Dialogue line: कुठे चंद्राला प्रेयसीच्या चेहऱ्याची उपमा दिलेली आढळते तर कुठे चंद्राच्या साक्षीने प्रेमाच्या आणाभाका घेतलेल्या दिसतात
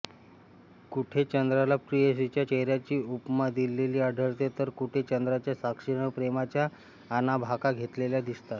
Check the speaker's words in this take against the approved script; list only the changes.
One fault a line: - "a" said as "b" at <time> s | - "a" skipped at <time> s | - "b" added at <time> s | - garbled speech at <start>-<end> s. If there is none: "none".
none